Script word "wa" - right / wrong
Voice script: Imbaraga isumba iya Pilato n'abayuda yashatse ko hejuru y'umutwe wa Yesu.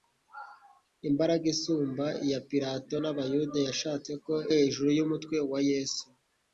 right